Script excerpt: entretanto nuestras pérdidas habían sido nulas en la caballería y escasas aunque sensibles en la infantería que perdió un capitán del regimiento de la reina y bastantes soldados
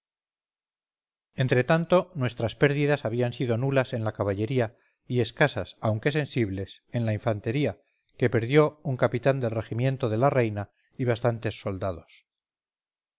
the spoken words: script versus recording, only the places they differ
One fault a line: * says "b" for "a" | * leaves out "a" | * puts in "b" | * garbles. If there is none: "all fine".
all fine